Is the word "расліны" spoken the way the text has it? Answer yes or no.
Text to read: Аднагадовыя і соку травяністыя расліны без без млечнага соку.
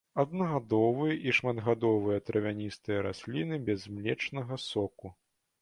yes